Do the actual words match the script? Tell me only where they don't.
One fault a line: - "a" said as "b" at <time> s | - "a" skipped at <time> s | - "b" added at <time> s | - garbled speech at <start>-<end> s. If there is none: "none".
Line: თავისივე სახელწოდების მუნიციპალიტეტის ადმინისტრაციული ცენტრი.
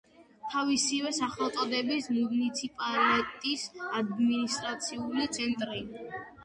none